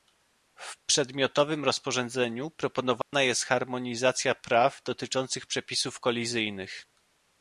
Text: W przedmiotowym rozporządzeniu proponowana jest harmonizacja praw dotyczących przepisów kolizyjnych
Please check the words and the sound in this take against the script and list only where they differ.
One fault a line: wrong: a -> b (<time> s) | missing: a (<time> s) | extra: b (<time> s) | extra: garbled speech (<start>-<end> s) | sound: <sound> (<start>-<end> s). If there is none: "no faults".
sound: dropout (3.0-3.1 s)